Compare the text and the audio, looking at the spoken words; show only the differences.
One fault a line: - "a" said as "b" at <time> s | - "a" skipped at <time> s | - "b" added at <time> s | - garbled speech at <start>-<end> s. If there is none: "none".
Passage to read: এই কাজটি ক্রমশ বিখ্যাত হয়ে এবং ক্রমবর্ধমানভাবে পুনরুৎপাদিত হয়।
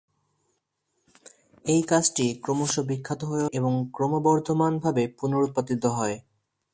none